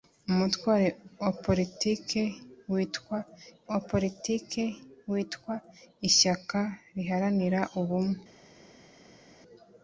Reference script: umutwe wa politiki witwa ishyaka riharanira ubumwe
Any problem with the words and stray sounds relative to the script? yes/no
yes